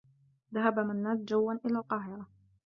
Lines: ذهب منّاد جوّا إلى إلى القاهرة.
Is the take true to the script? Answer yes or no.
no